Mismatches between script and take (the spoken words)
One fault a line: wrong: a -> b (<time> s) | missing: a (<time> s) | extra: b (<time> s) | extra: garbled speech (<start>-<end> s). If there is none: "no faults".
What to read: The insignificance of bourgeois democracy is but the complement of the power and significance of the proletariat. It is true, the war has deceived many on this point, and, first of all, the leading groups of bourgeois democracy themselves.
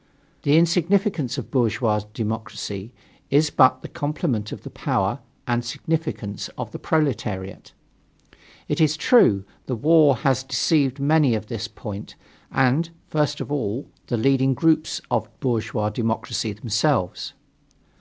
no faults